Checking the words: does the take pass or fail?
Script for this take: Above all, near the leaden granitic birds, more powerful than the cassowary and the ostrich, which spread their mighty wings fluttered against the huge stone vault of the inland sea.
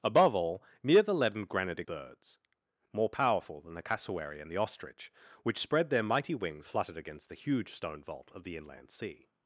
pass